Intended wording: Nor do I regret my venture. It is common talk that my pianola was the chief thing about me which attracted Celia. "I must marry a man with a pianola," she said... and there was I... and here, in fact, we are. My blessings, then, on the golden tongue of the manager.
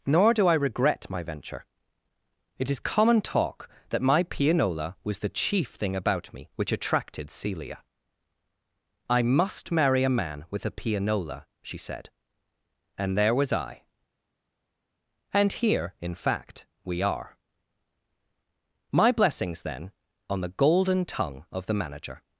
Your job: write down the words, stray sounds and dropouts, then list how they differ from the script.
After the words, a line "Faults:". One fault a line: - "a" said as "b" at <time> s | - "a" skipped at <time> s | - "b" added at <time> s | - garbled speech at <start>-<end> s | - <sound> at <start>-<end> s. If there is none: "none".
Nor do I regret my venture. It is common talk that my pianola was the chief thing about me which attracted Celia. "I must marry a man with a pianola," she said... and there was I... and here, in fact, we are. My blessings, then, on the golden tongue of the manager.
Faults:
none